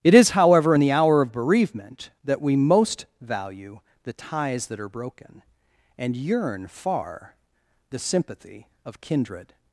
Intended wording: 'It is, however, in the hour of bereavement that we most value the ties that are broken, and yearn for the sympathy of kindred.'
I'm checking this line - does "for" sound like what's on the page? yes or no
no